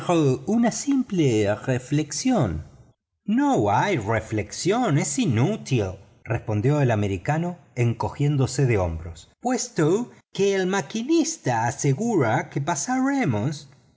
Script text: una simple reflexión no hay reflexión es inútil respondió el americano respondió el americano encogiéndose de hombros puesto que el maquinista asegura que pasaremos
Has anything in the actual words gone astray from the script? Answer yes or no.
yes